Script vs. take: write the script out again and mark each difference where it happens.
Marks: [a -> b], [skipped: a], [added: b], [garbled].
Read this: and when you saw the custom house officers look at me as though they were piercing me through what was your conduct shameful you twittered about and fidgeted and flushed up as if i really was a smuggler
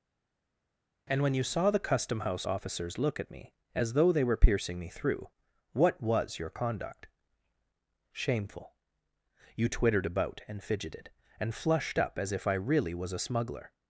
and when you saw the custom house officers look at me as though they were piercing me through what was your conduct shameful you twittered about and fidgeted and flushed up as if i really was a smuggler